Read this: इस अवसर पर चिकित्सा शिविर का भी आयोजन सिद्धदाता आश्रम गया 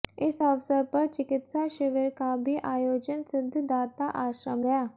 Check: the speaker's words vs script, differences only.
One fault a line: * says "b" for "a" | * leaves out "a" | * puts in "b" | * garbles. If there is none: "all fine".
all fine